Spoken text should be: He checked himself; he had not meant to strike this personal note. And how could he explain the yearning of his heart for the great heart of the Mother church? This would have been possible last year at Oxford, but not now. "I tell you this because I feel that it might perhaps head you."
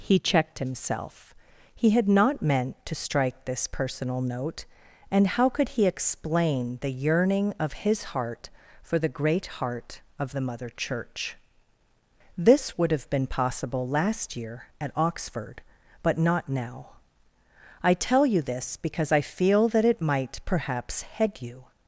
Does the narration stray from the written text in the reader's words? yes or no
no